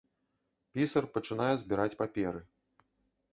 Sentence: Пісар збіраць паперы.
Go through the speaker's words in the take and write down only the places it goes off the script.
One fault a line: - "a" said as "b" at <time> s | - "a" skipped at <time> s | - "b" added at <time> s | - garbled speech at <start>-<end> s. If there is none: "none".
- "пачынае" added at 1.2 s